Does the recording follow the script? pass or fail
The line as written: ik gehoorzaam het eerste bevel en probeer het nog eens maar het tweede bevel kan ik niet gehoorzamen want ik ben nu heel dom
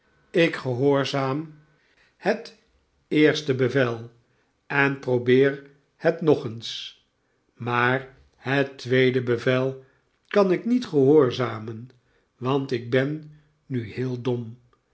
pass